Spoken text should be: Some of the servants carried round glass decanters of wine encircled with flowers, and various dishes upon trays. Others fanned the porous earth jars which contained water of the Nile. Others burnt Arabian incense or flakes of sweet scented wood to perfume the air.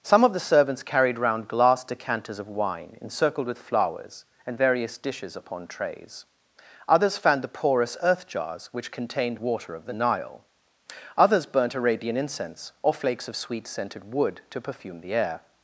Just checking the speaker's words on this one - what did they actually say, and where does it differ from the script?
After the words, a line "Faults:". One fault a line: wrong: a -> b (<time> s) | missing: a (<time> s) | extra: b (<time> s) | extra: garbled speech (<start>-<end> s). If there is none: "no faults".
Some of the servants carried round glass decanters of wine encircled with flowers, and various dishes upon trays. Others fanned the porous earth jars which contained water of the Nile. Others burnt Arabian incense or flakes of sweet scented wood to perfume the air.
Faults:
no faults